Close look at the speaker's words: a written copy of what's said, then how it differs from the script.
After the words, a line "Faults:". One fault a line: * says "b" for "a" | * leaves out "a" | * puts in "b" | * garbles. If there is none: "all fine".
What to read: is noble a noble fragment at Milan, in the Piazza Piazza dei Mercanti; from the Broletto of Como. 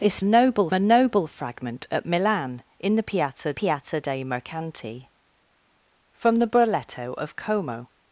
is noble a noble fragment at Milan, in the Piazza Piazza dei Mercanti; from the Broletto of Como.
Faults:
all fine